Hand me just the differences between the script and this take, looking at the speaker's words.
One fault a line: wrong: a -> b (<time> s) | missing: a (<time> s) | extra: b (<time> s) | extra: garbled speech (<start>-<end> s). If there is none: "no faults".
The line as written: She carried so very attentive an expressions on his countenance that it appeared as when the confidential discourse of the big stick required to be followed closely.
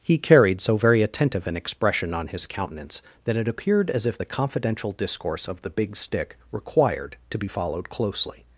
wrong: She -> He (0.0 s)
wrong: expressions -> expression (1.6 s)
wrong: when -> if (4.0 s)